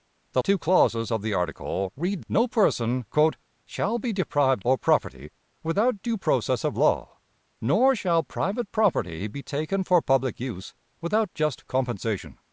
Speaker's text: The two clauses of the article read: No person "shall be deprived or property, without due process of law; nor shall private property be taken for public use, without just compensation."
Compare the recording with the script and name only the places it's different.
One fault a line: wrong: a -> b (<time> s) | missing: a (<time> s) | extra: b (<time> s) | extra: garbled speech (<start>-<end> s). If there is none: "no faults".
no faults